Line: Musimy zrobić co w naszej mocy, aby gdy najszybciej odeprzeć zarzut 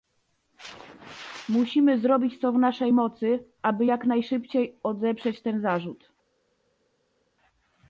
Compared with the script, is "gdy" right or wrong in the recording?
wrong